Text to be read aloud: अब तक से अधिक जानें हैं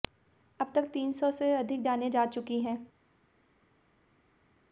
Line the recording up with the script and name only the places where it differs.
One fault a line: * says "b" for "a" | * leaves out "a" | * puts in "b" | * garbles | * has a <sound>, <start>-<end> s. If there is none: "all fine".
* puts in "तीन सौ"
* puts in "जा चुकी"